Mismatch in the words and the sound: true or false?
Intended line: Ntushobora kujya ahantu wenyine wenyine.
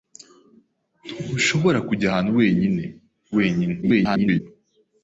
true